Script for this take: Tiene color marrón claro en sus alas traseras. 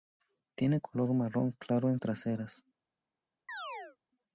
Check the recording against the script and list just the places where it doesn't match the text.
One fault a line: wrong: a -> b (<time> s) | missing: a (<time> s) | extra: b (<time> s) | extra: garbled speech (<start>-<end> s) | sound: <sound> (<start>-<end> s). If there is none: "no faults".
missing: sus alas (2.0 s)
sound: chirp (3.5-4.0 s)